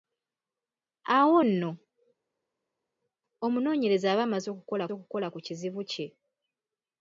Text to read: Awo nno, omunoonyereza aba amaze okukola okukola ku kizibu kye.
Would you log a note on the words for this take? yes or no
no